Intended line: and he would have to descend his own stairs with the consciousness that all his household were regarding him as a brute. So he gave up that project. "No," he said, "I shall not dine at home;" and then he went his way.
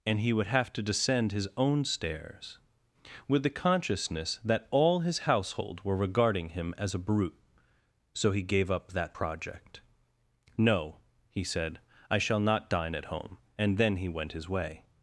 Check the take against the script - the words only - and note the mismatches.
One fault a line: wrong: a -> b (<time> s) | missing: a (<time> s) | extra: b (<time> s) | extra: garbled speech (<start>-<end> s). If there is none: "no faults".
no faults